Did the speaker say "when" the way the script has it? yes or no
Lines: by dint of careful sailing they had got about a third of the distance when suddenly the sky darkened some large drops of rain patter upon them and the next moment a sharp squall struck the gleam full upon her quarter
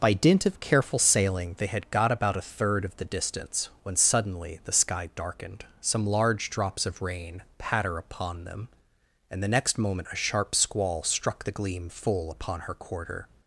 yes